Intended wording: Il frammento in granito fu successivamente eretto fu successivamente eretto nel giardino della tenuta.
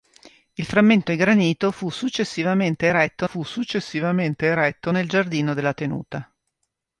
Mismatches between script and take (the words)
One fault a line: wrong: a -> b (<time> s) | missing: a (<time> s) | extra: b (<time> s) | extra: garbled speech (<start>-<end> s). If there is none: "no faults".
no faults